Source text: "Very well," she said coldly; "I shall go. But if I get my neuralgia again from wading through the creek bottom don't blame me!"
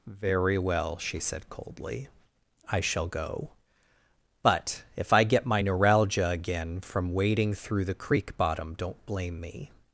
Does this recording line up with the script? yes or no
yes